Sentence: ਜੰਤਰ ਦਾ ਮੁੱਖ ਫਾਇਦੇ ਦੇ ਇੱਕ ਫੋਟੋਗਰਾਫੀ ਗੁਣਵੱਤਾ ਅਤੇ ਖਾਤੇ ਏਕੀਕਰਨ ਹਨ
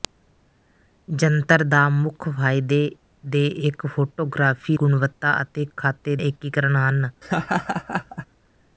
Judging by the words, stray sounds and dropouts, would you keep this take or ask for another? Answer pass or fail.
fail